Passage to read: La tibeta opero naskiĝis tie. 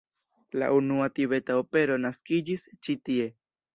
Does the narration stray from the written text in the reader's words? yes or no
yes